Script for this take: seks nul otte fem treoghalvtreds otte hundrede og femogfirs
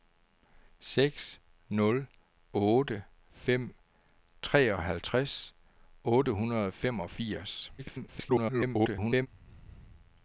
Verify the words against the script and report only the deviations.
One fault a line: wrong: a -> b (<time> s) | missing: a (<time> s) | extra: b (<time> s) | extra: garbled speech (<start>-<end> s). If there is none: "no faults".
extra: garbled speech (7.8-9.3 s)